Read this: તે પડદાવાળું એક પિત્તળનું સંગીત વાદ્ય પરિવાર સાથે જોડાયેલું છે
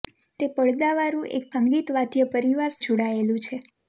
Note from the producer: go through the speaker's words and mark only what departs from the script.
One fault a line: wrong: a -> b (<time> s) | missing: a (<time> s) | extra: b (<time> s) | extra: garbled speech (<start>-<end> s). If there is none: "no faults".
missing: પિત્તળનું (1.4 s)
missing: સાથે (2.8 s)